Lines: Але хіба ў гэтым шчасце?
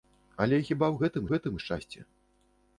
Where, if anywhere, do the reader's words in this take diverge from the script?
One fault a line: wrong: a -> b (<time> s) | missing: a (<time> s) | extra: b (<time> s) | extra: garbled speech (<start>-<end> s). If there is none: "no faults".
extra: гэтым (1.3 s)